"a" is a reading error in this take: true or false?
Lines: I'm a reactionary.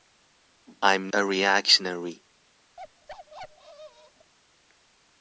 false